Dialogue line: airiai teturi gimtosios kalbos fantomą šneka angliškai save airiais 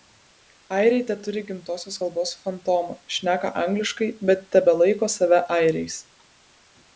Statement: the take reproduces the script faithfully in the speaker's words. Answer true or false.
false